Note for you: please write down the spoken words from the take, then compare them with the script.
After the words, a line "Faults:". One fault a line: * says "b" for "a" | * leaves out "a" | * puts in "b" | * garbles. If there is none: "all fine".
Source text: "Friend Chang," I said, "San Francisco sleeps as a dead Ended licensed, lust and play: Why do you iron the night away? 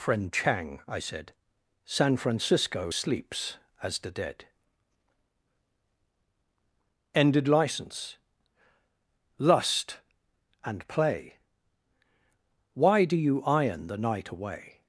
"Friend Chang," I said, "San Francisco sleeps as the dead Ended license, lust and play: Why do you iron the night away?
Faults:
* says "the" for "a"
* says "license" for "licensed"